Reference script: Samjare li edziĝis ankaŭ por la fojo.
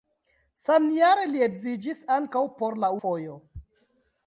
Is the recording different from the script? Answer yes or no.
no